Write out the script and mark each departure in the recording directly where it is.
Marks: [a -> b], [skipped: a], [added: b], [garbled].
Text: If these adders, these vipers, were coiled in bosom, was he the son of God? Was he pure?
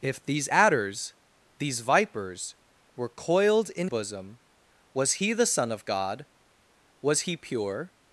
If these adders, these vipers, were coiled in bosom, was he the son of God? Was he pure?